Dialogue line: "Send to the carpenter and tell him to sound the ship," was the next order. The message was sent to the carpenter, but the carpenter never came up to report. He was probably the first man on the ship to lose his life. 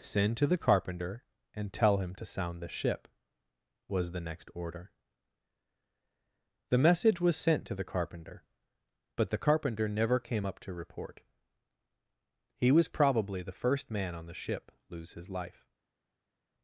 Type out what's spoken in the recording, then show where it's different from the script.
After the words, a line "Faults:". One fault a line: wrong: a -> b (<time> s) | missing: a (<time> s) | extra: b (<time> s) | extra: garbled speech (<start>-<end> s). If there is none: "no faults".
"Send to the carpenter and tell him to sound the ship," was the next order. The message was sent to the carpenter, but the carpenter never came up to report. He was probably the first man on the ship lose his life.
Faults:
missing: to (14.7 s)